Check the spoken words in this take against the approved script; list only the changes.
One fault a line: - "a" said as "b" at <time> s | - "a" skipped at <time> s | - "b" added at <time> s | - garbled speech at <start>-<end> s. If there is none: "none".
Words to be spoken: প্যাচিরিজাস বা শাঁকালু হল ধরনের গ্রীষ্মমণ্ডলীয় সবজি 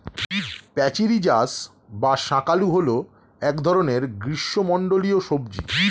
- "এক" added at 3.4 s